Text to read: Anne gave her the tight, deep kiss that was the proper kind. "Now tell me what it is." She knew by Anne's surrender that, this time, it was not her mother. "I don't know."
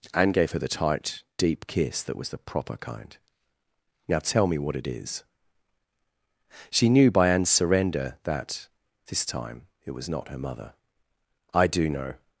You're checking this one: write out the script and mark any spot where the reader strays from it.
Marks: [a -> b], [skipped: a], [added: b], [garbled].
Anne gave her the tight, deep kiss that was the proper kind. "Now tell me what it is." She knew by Anne's surrender that, this time, it was not her mother. "I [don't -> do] know."